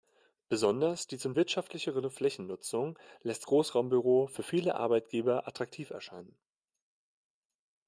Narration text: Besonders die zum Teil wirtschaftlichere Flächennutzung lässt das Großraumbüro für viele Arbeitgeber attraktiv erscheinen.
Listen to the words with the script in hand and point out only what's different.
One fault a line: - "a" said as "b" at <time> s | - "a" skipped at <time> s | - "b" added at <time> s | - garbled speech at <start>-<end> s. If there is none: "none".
- "Teil" skipped at 1.4 s
- "das" skipped at 3.4 s